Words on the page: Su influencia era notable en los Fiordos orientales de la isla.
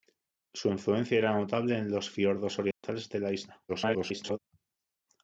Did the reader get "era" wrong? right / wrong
right